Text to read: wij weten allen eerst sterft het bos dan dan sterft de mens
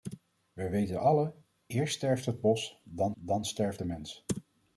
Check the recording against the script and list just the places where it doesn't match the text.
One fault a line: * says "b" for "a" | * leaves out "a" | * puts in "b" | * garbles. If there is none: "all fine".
all fine